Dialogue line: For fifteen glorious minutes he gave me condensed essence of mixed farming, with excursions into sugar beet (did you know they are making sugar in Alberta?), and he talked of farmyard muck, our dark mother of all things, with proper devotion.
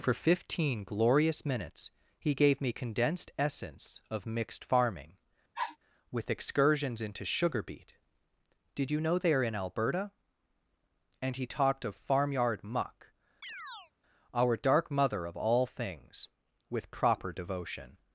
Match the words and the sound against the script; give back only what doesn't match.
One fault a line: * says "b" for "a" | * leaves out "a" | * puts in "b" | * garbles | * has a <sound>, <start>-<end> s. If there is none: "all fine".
* has a sniff, 5.5-5.8 s
* leaves out "making sugar"
* has a chirp, 13.4-13.9 s